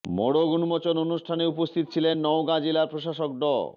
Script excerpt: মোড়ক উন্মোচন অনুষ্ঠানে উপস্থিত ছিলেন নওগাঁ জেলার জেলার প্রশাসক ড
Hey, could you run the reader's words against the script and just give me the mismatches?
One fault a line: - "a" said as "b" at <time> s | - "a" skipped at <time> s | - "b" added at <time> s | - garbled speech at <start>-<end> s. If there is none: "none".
- "জেলার" skipped at 2.9 s